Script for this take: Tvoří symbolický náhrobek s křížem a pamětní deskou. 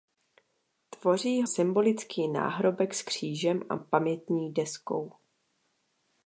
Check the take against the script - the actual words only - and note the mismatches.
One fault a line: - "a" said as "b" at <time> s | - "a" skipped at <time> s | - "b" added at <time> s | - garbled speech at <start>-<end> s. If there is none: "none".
none